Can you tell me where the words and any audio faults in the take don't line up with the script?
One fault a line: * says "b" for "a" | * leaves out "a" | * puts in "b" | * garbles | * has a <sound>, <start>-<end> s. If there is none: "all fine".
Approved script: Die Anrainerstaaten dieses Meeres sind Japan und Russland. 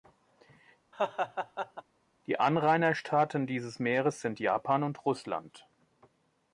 * has a laugh, 0.9-1.8 s